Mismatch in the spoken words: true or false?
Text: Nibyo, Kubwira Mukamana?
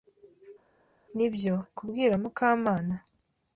false